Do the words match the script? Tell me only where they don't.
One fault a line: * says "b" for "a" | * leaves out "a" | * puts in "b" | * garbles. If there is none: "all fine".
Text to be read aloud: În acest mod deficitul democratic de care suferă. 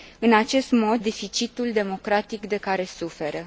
all fine